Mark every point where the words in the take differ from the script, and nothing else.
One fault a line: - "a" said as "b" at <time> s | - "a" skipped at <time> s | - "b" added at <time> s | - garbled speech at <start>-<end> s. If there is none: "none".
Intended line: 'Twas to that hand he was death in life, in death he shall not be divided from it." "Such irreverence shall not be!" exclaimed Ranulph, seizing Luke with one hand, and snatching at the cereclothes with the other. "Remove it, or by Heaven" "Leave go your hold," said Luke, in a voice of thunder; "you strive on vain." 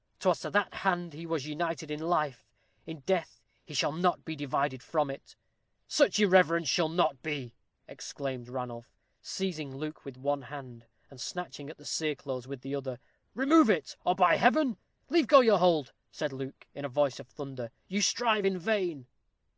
- "death" said as "united" at 1.4 s
- "on" said as "in" at 18.5 s